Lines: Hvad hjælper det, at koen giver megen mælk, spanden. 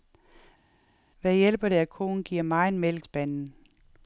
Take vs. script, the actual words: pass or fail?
pass